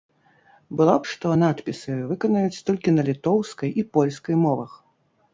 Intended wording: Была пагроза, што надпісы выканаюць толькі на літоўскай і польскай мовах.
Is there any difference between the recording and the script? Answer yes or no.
yes